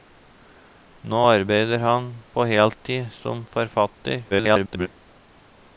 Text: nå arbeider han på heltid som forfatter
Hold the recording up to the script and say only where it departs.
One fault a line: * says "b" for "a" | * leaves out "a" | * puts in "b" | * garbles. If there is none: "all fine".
* garbles